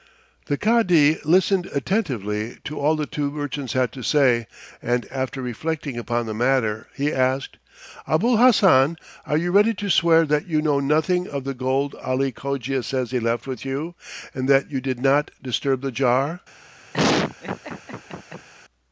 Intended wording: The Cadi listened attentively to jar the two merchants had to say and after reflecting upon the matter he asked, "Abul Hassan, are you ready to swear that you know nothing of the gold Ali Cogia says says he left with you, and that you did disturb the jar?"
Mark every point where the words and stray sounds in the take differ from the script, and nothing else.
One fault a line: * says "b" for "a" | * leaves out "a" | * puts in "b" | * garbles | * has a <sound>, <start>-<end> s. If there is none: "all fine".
* says "all" for "jar"
* leaves out "says"
* puts in "not"
* has a laugh, 16.9-18.5 s